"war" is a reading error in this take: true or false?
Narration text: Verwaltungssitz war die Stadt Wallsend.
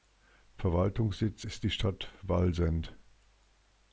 true